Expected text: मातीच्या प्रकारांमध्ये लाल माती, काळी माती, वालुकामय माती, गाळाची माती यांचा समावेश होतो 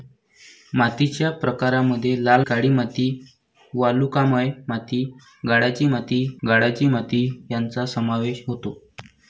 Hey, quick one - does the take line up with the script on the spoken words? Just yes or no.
no